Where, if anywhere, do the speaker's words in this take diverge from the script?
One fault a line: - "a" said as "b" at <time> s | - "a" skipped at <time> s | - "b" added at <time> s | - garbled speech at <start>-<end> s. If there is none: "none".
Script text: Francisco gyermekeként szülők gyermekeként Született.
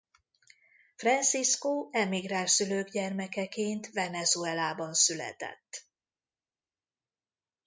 - "gyermekeként" said as "emigráns" at 1.9 s
- "Venezuelában" added at 3.9 s